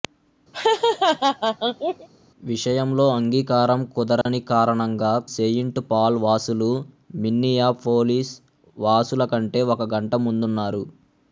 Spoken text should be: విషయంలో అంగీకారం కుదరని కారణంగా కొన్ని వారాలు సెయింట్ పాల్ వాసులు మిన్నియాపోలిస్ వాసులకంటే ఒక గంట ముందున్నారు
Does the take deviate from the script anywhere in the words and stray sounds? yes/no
yes